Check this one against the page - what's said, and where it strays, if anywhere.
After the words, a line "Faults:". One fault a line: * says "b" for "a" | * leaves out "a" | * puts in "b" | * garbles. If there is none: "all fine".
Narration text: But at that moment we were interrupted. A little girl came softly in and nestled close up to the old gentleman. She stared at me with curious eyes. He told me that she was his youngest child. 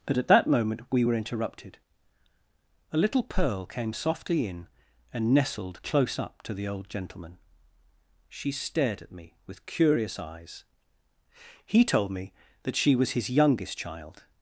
But at that moment we were interrupted. A little pearl came softly in and nestled close up to the old gentleman. She stared at me with curious eyes. He told me that she was his youngest child.
Faults:
* says "pearl" for "girl"